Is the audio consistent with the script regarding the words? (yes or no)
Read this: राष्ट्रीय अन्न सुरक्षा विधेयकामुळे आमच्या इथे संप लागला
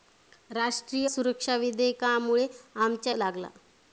no